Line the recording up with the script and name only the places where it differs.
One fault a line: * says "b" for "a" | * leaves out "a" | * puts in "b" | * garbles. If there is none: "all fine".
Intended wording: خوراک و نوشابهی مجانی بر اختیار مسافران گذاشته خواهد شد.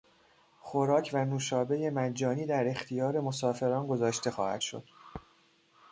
* says "در" for "بر"